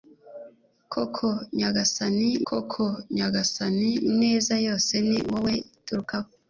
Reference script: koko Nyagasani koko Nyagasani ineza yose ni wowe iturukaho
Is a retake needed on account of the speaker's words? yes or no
no